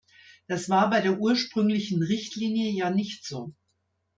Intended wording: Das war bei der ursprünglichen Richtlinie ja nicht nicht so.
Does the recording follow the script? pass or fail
fail